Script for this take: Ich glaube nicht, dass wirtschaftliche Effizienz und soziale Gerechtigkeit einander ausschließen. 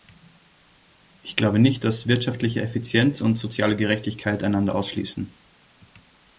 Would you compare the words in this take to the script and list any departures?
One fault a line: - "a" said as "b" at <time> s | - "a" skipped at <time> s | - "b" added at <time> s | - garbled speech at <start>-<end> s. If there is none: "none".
none